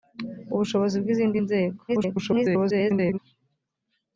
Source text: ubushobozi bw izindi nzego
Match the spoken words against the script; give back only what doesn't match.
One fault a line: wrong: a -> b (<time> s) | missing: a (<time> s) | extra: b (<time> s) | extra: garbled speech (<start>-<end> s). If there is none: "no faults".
extra: garbled speech (1.9-3.2 s)